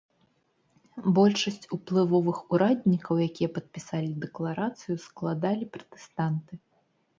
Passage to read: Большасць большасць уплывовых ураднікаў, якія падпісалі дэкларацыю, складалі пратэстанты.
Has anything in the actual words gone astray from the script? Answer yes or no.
yes